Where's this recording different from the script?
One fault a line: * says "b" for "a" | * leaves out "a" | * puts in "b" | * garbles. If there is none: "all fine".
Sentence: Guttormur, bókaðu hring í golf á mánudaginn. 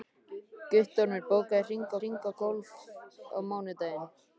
* puts in "hring"